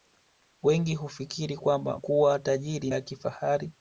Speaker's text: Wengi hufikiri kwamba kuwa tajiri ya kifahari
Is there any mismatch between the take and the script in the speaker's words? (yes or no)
no